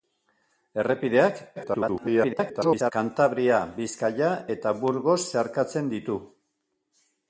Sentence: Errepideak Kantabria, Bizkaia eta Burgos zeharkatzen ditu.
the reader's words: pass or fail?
fail